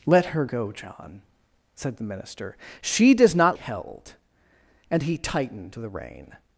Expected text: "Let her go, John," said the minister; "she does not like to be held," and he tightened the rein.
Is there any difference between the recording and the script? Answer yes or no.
yes